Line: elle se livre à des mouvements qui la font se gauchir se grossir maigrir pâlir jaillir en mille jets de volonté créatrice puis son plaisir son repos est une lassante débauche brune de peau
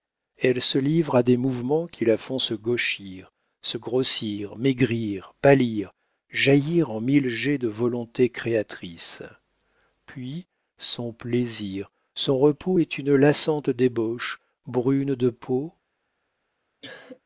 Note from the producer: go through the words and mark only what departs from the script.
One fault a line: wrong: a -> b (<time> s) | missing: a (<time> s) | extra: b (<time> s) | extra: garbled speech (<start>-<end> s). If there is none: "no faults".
no faults